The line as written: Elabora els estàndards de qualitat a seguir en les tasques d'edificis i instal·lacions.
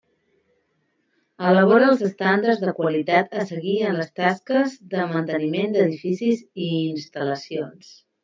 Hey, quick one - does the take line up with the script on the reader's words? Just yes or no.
no